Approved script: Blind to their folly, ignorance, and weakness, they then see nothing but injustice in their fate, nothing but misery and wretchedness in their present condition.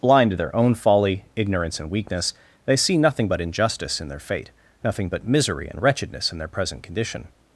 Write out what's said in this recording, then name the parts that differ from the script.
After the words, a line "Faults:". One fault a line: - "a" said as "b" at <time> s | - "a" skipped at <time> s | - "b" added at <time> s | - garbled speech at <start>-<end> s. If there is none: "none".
Blind to their own folly, ignorance, and weakness, they see nothing but injustice in their fate, nothing but misery and wretchedness in their present condition.
Faults:
- "own" added at 0.6 s
- "then" skipped at 2.8 s